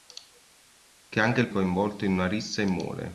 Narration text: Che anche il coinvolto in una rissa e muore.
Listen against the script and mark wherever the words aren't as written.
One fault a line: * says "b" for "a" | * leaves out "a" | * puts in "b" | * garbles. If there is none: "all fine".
all fine